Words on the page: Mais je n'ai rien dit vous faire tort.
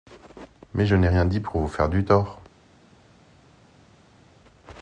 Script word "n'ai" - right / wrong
right